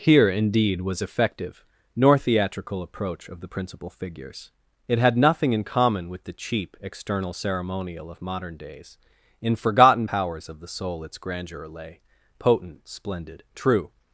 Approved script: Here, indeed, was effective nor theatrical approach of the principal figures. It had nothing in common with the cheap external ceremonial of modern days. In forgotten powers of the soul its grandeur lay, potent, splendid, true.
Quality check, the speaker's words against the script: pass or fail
pass